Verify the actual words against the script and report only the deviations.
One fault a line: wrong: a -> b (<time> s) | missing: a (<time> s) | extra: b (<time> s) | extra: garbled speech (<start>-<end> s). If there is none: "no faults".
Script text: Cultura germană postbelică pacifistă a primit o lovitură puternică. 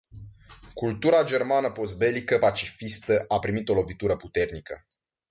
no faults